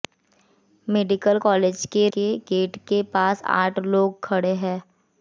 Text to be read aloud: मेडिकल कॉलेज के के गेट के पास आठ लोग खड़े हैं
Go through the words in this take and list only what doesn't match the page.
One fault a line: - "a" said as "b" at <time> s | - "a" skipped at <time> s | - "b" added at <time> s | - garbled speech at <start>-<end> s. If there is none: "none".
none